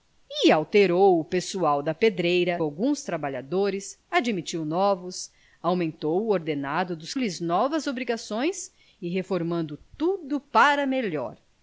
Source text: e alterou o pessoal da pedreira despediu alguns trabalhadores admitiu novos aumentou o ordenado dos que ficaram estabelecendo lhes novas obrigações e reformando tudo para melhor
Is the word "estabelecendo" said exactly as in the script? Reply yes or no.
no